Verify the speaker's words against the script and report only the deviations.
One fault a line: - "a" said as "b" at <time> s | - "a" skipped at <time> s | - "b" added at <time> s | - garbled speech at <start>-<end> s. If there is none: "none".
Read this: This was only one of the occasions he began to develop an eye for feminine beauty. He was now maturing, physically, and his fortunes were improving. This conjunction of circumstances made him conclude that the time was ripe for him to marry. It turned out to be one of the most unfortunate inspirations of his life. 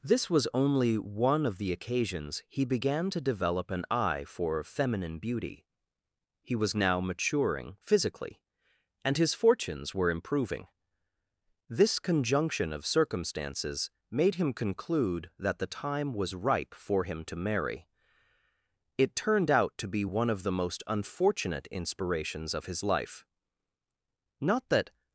- "Not that" added at 24.4 s